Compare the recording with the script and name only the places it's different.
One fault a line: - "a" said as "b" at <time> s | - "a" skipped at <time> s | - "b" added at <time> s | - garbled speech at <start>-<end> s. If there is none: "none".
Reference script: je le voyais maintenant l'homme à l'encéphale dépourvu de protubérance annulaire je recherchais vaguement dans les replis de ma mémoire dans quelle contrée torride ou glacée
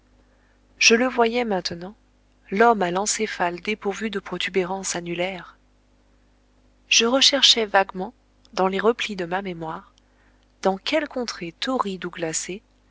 none